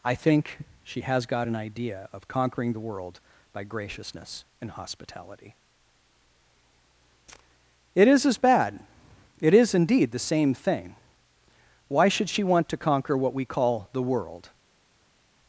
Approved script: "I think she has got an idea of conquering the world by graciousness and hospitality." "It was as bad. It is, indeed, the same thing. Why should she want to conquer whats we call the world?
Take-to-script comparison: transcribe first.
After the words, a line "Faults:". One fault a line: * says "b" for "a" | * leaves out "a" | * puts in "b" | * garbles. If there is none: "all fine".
"I think she has got an idea of conquering the world by graciousness and hospitality." "It is as bad. It is, indeed, the same thing. Why should she want to conquer what we call the world?
Faults:
* says "is" for "was"
* says "what" for "whats"